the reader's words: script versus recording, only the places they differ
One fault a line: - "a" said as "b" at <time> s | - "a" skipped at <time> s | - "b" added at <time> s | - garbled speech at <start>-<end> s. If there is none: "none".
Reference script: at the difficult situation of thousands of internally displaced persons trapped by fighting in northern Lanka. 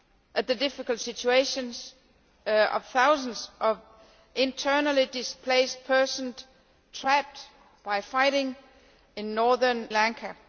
none